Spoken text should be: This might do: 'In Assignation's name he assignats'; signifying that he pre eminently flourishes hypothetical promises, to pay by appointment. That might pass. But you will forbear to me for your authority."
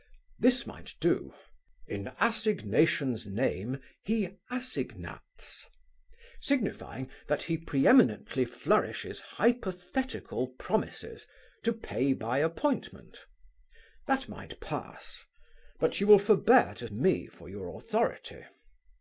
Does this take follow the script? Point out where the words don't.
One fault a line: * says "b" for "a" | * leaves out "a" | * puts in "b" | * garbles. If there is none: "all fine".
all fine